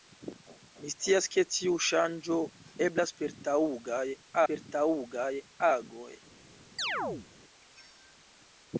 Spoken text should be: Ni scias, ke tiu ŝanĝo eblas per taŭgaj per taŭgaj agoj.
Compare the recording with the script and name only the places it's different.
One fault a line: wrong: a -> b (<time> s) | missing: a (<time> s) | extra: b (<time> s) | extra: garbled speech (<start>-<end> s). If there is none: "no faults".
no faults